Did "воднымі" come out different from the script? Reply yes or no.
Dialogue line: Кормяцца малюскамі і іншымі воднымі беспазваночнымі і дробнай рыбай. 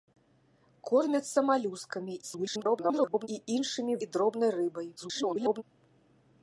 yes